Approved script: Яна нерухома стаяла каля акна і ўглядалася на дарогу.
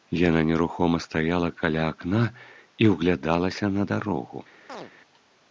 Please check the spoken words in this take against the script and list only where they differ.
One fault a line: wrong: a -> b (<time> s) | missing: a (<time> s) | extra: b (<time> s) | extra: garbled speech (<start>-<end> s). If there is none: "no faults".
no faults